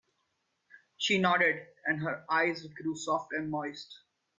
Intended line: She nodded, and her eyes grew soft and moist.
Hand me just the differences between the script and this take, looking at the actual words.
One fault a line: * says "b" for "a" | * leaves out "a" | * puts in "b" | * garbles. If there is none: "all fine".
all fine